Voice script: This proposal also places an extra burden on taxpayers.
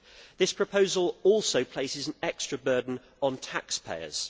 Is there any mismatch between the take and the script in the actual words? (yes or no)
no